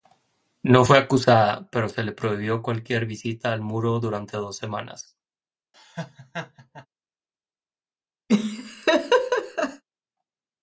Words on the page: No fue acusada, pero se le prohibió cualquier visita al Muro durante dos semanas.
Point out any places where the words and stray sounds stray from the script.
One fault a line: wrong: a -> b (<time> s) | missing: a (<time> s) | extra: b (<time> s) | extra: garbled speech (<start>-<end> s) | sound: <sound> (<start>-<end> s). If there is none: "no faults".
sound: laugh (5.7-6.9 s)
sound: laugh (8.3-9.8 s)